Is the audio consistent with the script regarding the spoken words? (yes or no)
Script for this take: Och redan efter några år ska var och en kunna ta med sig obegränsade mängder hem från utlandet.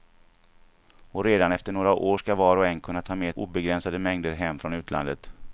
no